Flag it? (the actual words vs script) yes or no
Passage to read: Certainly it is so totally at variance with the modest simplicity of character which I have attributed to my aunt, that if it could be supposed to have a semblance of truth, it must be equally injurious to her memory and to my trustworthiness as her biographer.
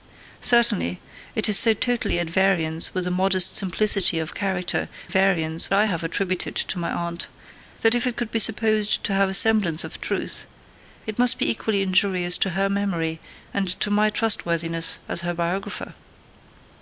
yes